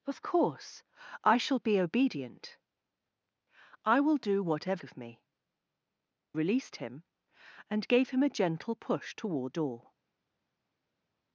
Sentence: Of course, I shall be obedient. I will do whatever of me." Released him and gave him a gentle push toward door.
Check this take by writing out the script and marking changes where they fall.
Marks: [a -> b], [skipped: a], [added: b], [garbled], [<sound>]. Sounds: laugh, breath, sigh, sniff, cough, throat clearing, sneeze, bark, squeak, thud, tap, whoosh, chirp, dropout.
Of course, I shall be obedient. I will do whatever of me." Released him and gave him a gentle push toward door.